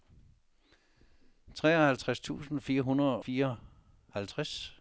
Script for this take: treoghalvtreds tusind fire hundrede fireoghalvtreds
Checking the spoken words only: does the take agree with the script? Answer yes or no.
yes